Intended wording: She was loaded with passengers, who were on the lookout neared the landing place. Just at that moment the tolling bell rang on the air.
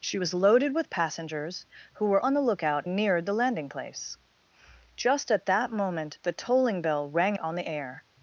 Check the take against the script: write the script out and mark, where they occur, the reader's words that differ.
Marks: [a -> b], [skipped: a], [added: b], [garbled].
She was loaded with passengers, who were on the lookout neared the landing place. Just at that moment the tolling bell rang on the air.